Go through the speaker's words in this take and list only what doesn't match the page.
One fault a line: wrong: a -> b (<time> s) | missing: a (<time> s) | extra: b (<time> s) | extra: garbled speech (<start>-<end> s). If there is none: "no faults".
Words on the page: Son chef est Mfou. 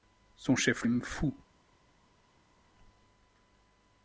no faults